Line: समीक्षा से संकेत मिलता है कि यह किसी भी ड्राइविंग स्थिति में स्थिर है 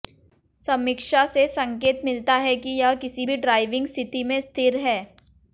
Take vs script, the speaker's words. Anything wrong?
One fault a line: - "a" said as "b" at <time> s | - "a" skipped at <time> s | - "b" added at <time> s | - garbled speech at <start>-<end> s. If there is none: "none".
none